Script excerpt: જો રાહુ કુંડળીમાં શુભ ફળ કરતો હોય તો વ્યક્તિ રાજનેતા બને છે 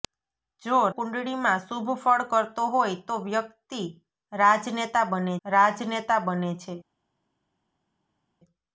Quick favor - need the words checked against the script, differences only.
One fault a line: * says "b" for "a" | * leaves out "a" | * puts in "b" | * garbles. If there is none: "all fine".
* leaves out "રાહુ"
* puts in "રાજનેતા બને"